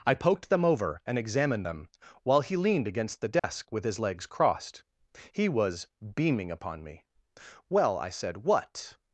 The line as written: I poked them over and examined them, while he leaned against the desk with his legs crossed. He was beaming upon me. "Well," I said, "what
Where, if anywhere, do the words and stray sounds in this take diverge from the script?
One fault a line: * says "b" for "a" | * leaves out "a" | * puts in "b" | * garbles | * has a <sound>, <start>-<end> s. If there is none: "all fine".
* has a dropout, 3.4-3.4 s